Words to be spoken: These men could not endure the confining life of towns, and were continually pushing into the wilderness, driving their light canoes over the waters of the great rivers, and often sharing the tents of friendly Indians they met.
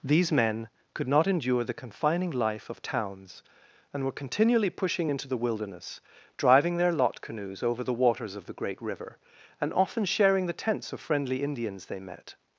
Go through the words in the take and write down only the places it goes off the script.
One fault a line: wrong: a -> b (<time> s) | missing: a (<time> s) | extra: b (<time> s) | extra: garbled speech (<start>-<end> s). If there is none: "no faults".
wrong: light -> lot (6.9 s)
wrong: rivers -> river (8.8 s)